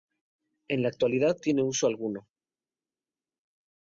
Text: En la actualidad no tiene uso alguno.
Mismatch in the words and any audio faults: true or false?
true